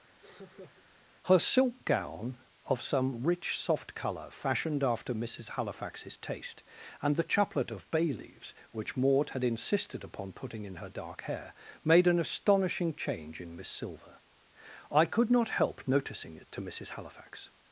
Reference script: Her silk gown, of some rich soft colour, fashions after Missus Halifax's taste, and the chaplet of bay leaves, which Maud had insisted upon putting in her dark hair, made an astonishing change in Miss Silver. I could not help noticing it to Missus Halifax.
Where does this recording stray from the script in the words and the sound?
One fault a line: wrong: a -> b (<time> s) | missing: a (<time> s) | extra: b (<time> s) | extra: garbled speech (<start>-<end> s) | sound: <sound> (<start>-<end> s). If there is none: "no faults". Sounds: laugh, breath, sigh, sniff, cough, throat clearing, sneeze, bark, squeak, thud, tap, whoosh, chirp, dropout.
sound: laugh (0.2-0.8 s)
wrong: fashions -> fashioned (4.3 s)